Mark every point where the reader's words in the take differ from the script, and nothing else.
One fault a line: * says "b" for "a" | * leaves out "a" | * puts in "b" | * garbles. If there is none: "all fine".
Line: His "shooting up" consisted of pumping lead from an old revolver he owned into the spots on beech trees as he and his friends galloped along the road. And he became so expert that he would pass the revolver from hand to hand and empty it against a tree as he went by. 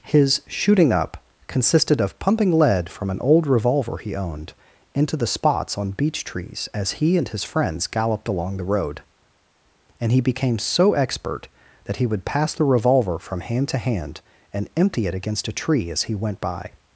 all fine